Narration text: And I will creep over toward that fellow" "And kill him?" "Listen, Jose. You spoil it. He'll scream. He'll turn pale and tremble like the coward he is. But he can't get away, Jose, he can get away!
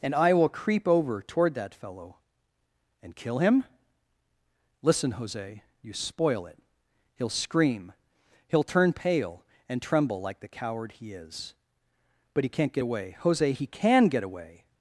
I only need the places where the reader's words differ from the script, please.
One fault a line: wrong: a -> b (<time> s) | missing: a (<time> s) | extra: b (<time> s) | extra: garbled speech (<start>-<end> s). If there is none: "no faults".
no faults